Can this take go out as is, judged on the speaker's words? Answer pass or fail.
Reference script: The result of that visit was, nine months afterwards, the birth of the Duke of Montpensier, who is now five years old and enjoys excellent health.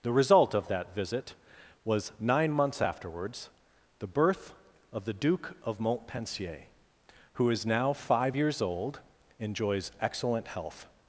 fail